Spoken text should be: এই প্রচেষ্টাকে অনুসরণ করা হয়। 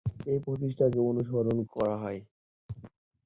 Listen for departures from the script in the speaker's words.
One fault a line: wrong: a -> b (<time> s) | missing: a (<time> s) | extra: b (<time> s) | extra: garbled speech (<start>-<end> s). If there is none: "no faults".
no faults